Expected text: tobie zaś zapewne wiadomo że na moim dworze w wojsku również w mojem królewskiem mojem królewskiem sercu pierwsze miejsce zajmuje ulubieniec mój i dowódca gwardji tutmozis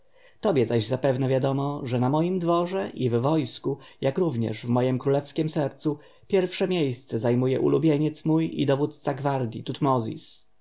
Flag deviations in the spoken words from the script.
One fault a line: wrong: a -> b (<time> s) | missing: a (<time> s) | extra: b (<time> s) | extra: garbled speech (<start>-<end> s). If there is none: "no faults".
extra: i (2.9 s)
extra: jak (4.0 s)
missing: mojem królewskiem (5.5 s)